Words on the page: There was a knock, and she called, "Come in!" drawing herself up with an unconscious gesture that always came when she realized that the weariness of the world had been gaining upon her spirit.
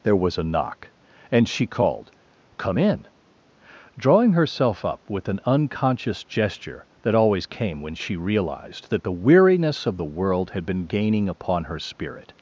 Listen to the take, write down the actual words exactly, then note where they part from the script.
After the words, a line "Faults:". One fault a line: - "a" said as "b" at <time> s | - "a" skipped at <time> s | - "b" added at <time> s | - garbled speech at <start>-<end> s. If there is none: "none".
There was a knock, and she called, "Come in!" drawing herself up with an unconscious gesture that always came when she realized that the weariness of the world had been gaining upon her spirit.
Faults:
none